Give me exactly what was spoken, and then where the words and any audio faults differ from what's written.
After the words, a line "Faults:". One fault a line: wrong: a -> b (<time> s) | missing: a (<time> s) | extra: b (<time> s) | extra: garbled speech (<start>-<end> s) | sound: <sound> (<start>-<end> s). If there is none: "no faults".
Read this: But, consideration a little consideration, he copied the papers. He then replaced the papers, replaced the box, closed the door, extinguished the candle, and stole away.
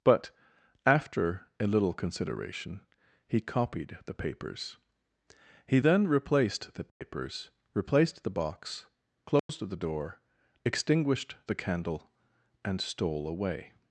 But, after a little consideration, he copied the papers. He then replaced the papers, replaced the box, closed the door, extinguished the candle, and stole away.
Faults:
wrong: consideration -> after (0.8 s)
sound: dropout (6.9-7.0 s)
sound: dropout (9.4-9.5 s)